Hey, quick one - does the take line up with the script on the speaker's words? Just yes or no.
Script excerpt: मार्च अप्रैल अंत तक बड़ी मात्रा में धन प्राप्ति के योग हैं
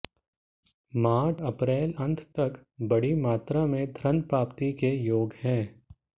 yes